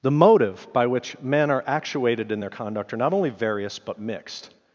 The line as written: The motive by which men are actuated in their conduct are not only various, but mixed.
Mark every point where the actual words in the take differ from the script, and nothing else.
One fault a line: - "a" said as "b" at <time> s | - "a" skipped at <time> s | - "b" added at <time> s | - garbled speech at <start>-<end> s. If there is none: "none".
none